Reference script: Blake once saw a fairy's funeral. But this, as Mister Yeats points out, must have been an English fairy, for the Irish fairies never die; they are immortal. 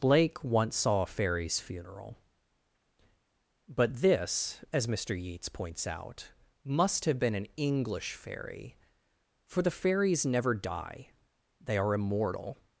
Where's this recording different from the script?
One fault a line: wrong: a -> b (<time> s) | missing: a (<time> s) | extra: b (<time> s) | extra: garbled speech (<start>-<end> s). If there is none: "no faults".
missing: Irish (9.7 s)